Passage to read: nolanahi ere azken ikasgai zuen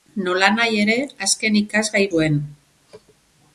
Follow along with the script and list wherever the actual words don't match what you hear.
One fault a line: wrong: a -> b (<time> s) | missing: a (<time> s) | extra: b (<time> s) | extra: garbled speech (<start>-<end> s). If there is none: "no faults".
no faults